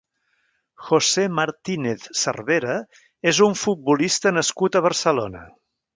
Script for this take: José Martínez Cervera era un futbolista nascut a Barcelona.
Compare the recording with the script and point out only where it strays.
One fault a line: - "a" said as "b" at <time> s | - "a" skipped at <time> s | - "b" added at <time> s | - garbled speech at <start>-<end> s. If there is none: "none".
- "era" said as "és" at 3.3 s